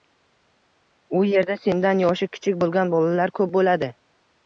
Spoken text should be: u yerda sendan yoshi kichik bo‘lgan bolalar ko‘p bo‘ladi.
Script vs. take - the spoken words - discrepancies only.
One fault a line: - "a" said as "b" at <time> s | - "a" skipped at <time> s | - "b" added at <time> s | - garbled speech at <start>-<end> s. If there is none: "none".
none